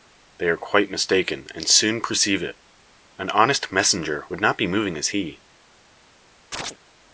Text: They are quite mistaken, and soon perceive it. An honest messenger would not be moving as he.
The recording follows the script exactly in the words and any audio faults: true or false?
false